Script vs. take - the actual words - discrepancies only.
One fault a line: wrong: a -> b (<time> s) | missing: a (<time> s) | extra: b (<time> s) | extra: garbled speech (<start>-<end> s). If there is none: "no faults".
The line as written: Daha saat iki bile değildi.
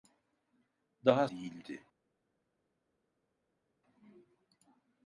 missing: saat iki bile (1.3 s)